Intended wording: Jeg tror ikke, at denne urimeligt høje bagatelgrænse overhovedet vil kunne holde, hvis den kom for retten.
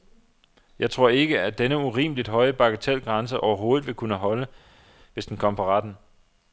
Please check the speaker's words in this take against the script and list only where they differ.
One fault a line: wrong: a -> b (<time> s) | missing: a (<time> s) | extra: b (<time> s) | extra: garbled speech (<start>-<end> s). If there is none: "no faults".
no faults